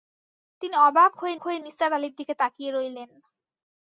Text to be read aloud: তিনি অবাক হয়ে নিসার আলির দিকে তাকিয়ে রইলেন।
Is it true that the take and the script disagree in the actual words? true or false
true